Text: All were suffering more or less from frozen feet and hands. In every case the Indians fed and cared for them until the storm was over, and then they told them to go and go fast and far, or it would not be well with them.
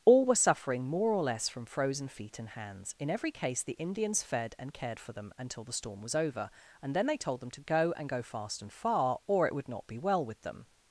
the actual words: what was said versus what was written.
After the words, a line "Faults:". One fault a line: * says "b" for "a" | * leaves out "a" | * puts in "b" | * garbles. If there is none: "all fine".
All were suffering more or less from frozen feet and hands. In every case the Indians fed and cared for them until the storm was over, and then they told them to go and go fast and far, or it would not be well with them.
Faults:
all fine